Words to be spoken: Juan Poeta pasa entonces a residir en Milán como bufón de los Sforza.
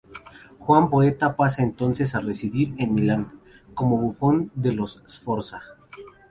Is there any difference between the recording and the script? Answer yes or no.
no